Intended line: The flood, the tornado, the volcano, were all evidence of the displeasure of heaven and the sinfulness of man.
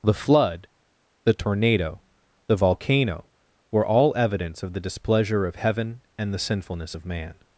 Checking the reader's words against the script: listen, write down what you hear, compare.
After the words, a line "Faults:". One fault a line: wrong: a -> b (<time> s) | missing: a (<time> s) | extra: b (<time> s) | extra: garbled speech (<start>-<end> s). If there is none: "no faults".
The flood, the tornado, the volcano, were all evidence of the displeasure of heaven and the sinfulness of man.
Faults:
no faults